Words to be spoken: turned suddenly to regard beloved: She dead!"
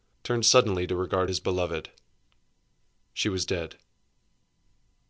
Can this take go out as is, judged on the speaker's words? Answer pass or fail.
fail